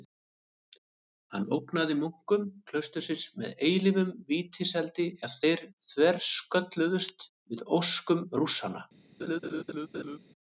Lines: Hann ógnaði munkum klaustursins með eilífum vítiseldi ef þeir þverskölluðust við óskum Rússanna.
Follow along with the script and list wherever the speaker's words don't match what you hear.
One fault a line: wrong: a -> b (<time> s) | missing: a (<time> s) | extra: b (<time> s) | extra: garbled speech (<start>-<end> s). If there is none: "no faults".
no faults